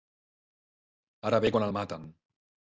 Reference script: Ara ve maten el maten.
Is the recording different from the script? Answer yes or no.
yes